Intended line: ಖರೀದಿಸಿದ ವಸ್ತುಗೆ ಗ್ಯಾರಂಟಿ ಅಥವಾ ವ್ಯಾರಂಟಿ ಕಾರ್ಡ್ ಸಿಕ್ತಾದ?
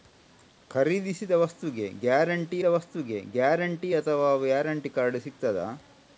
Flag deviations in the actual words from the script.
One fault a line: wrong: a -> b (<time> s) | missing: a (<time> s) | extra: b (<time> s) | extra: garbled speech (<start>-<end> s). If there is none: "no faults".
extra: ವಸ್ತುಗೆ ಗ್ಯಾರಂಟಿ (2.6 s)